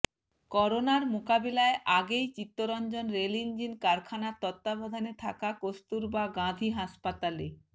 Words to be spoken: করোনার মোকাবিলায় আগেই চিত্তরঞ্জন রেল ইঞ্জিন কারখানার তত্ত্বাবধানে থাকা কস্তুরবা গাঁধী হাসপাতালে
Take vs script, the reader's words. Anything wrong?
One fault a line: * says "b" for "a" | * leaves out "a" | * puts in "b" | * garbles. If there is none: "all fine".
all fine